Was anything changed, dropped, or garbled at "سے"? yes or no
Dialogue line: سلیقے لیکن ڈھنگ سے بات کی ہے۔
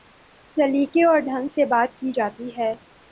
no